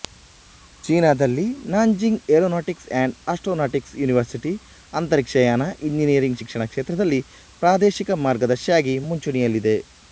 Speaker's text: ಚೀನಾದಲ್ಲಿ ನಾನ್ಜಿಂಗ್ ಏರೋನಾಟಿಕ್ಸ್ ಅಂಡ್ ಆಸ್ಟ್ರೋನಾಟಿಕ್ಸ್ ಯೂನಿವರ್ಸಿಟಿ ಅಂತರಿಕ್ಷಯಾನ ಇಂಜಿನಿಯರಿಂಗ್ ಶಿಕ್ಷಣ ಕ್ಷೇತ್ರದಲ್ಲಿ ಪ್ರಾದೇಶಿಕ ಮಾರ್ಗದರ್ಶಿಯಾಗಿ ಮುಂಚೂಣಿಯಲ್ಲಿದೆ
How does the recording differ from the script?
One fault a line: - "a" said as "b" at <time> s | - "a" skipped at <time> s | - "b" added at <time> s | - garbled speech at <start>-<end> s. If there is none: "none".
none